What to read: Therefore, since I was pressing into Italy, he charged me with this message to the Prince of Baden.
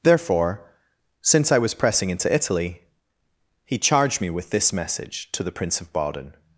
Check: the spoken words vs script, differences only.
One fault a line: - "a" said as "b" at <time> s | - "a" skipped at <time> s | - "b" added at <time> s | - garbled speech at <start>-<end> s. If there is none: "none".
none